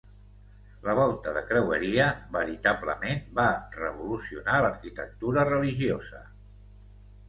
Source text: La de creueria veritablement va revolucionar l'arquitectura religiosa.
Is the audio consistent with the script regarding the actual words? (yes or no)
no